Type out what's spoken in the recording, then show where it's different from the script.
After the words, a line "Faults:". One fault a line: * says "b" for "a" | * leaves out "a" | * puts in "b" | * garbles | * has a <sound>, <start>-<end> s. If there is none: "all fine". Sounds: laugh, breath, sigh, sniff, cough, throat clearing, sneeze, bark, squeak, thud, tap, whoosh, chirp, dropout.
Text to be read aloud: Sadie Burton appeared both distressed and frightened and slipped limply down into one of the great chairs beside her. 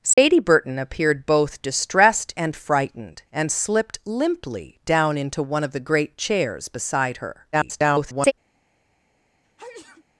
Sadie Burton appeared both distressed and frightened and slipped limply down into one of the great chairs beside her. [garbled]
Faults:
* has a dropout, 0.1-0.2 s
* garbles
* has a sneeze, 9.4-10.0 s